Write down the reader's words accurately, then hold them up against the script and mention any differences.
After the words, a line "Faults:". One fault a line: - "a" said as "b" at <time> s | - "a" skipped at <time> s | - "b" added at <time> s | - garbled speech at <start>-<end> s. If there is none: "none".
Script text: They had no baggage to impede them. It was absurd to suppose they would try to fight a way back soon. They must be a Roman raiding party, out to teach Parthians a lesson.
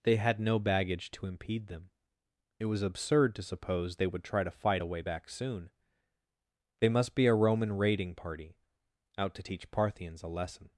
They had no baggage to impede them. It was absurd to suppose they would try to fight a way back soon. They must be a Roman raiding party, out to teach Parthians a lesson.
Faults:
none